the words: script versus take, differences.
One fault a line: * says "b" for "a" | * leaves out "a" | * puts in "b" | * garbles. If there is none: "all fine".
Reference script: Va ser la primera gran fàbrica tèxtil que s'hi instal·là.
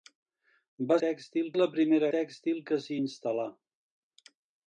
* says "tèxtil" for "ser"
* leaves out "gran fàbrica"